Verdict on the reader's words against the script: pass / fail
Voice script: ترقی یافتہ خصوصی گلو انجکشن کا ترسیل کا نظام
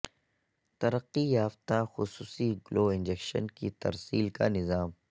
fail